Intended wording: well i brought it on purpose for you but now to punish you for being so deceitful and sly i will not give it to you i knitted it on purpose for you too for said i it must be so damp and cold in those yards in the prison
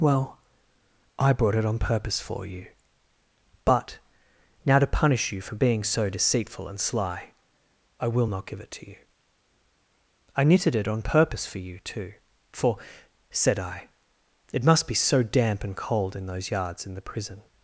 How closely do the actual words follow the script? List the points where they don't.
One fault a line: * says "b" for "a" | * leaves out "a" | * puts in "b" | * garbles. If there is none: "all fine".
all fine